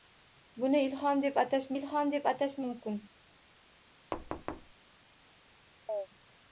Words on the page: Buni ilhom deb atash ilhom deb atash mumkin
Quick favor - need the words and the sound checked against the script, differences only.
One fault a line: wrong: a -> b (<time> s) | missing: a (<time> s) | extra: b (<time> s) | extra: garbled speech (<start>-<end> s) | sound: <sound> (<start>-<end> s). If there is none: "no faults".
sound: thud (4.1-4.7 s)
sound: chirp (5.9-6.1 s)